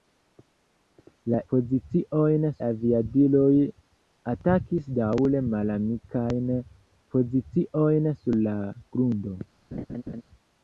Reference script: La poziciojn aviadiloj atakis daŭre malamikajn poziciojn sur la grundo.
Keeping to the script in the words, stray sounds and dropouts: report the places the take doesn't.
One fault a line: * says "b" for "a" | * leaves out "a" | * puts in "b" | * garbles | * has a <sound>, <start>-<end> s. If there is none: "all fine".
* has a laugh, 9.7-10.2 s